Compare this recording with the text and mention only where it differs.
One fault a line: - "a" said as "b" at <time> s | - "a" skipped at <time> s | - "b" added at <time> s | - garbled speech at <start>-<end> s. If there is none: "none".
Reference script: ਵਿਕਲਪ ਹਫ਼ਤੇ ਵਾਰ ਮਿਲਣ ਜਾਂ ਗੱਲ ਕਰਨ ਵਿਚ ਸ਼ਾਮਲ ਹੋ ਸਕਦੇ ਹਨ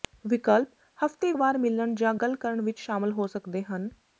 none